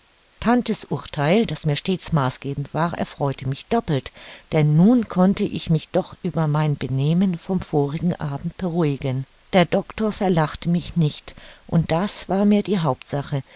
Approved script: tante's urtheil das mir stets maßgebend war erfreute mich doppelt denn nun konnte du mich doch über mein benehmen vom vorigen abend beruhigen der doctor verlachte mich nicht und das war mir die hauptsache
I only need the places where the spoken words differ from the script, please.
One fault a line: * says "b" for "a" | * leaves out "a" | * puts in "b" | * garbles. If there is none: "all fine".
* says "ich" for "du"